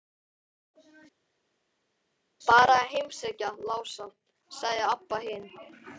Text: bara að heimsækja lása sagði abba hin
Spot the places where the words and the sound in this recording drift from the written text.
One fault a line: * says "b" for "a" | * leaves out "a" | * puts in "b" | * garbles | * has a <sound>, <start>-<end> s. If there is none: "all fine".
all fine